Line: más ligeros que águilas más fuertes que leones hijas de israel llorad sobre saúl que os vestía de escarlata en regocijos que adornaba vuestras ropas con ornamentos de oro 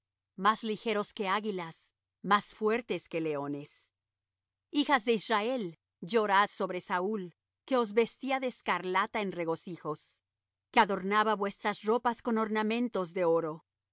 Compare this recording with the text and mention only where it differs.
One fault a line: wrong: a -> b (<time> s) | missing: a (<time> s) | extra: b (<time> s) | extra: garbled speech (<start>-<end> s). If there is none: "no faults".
no faults